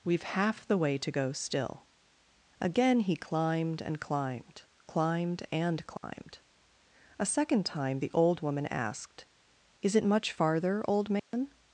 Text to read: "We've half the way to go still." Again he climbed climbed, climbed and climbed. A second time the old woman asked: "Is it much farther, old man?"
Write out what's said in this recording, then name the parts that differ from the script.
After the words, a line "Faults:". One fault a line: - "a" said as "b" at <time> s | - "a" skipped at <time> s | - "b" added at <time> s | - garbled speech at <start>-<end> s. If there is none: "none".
"We've half the way to go still." Again he climbed and climbed, climbed and climbed. A second time the old woman asked: "Is it much farther, old man?"
Faults:
- "and" added at 3.8 s